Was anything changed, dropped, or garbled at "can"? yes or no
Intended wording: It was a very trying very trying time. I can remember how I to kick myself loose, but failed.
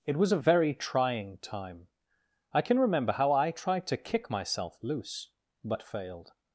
no